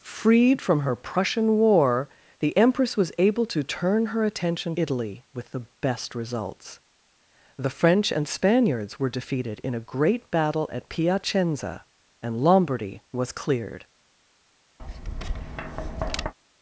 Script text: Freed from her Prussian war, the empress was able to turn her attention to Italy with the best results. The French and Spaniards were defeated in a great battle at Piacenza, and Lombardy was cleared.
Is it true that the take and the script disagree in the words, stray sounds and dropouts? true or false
true